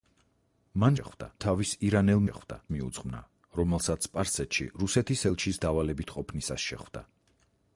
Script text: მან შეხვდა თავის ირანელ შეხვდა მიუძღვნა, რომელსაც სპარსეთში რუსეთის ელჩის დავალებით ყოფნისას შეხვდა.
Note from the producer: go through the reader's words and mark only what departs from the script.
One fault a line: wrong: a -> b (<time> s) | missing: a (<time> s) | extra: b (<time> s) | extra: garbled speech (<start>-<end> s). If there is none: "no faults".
no faults